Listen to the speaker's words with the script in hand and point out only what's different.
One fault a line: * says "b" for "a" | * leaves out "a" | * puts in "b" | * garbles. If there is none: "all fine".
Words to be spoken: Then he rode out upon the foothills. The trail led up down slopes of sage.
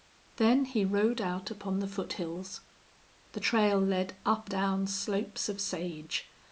all fine